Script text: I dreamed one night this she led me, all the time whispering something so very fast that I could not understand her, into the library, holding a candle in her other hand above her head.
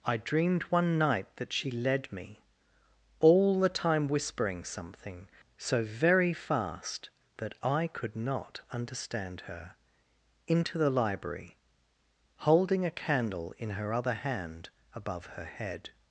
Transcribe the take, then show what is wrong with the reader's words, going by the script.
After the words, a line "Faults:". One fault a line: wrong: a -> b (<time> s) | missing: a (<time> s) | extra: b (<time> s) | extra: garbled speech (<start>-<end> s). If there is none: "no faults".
I dreamed one night that she led me, all the time whispering something so very fast that I could not understand her, into the library, holding a candle in her other hand above her head.
Faults:
wrong: this -> that (1.4 s)